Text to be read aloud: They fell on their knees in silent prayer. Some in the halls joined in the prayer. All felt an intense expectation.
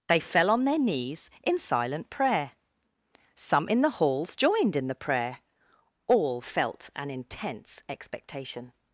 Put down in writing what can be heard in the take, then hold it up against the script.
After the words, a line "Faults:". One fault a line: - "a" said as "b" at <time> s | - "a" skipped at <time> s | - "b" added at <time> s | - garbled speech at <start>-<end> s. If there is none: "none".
They fell on their knees in silent prayer. Some in the halls joined in the prayer. All felt an intense expectation.
Faults:
none